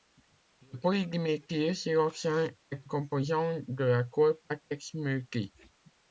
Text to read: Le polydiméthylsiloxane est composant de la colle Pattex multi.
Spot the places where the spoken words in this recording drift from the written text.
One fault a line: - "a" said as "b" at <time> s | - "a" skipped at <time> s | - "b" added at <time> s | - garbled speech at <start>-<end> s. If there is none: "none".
none